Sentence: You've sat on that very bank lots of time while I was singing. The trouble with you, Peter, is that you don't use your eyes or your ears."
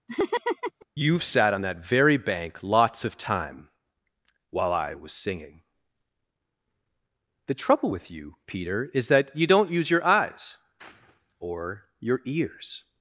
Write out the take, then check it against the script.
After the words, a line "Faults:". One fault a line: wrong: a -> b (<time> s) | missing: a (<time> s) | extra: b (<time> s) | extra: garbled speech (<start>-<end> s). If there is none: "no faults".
You've sat on that very bank lots of time while I was singing. The trouble with you, Peter, is that you don't use your eyes or your ears."
Faults:
no faults